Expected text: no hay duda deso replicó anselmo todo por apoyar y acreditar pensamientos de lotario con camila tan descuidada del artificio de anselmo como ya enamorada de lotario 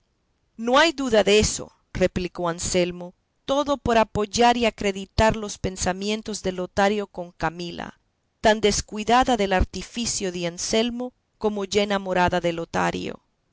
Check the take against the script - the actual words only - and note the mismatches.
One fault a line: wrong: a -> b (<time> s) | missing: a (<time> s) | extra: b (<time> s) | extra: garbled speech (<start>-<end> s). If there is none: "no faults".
extra: los (5.3 s)